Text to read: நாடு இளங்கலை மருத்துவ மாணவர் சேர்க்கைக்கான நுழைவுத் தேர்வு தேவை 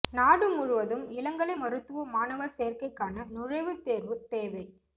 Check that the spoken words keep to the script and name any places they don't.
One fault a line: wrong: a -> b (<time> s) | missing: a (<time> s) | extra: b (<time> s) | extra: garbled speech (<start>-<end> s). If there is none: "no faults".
extra: முழுவதும் (0.5 s)